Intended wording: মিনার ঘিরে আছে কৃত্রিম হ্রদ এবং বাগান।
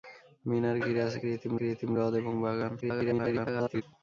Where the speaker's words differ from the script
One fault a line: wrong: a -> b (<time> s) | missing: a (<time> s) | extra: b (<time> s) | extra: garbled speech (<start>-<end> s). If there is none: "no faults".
extra: কৃত্রিম (1.6 s)
extra: garbled speech (2.8-3.8 s)